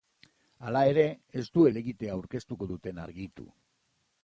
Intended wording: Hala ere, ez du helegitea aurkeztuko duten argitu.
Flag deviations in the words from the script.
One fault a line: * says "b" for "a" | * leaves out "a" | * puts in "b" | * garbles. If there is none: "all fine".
all fine